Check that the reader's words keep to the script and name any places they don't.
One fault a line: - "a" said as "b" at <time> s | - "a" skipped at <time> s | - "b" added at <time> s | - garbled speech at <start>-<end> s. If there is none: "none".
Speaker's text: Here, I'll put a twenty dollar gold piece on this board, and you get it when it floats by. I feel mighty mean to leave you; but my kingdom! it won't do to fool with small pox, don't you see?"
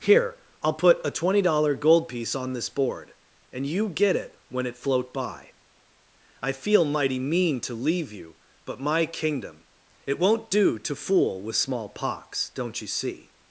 - "floats" said as "float" at 4.8 s